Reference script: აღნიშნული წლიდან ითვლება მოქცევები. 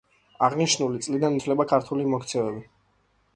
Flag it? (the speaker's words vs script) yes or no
yes